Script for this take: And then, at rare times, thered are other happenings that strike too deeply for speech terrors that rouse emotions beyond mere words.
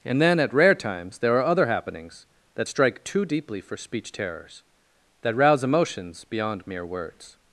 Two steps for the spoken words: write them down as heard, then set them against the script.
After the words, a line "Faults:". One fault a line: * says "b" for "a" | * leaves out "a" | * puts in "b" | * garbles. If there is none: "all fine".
And then, at rare times, there are other happenings that strike too deeply for speech terrors that rouse emotions beyond mere words.
Faults:
* says "there" for "thered"